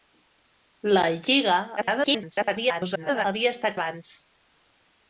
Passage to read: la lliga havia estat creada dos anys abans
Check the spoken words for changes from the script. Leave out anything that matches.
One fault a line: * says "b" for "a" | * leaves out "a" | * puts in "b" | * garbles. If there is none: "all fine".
* garbles
* leaves out "creada dos anys"